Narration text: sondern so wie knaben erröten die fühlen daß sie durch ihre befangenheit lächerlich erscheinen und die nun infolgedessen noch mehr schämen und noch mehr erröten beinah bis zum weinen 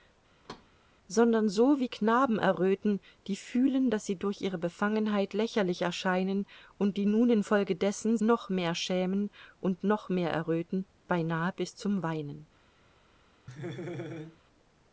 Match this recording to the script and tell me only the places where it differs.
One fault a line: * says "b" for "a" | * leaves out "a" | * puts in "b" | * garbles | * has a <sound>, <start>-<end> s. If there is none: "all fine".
* has a thud, 0.4-0.7 s
* has a laugh, 13.5-14.4 s